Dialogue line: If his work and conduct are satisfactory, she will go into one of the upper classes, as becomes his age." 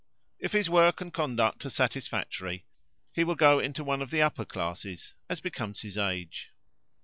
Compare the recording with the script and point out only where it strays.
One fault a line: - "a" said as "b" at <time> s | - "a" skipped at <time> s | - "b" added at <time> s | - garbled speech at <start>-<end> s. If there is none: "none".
- "she" said as "he" at 3.1 s